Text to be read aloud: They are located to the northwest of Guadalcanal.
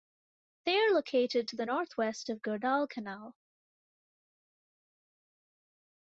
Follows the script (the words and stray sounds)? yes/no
yes